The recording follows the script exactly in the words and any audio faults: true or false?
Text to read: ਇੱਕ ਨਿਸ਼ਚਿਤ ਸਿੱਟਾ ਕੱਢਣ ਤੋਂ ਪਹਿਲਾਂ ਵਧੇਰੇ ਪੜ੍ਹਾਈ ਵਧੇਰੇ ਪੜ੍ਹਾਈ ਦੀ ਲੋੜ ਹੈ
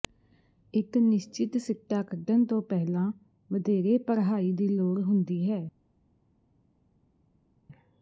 false